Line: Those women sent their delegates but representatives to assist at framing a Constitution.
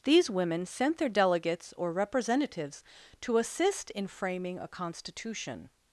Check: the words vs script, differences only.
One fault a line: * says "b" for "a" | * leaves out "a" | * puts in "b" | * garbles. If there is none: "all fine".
* says "These" for "Those"
* says "or" for "but"
* says "in" for "at"